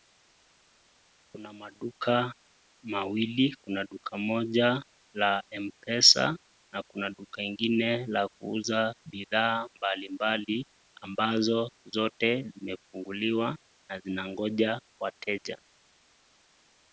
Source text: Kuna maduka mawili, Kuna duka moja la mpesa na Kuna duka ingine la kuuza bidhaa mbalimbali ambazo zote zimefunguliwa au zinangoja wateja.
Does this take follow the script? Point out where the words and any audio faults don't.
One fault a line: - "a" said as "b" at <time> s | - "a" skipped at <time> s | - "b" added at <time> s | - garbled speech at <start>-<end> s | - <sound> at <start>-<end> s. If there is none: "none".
- "au" said as "na" at 13.9 s